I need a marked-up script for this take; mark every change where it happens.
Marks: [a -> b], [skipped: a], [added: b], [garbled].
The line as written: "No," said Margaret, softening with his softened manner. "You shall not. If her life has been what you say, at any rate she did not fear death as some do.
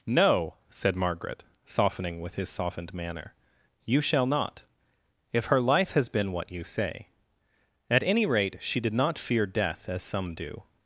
"No," said Margaret, softening with his softened manner. "You shall not. If her life has been what you say, at any rate she did not fear death as some do.